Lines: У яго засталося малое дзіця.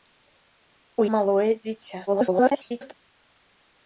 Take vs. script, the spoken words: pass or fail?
fail